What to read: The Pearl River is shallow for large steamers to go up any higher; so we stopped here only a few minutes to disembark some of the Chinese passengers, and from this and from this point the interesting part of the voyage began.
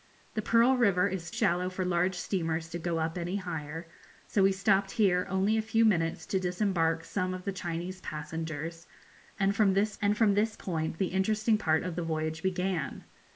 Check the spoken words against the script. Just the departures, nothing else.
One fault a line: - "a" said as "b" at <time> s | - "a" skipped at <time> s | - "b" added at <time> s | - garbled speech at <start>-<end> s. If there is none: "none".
none